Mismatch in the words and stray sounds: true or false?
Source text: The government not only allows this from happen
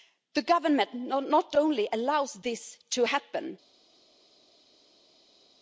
true